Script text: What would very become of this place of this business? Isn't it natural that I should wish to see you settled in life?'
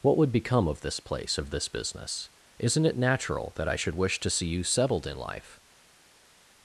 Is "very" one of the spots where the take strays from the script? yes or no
yes